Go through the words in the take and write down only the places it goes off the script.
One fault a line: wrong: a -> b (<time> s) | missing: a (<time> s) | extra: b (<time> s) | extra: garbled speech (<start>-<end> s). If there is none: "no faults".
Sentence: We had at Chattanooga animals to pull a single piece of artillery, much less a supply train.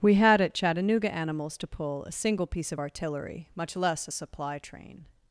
no faults